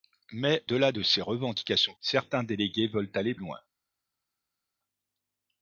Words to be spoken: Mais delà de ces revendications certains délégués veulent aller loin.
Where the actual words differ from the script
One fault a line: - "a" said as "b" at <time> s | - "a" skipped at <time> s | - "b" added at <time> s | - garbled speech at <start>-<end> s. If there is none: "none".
none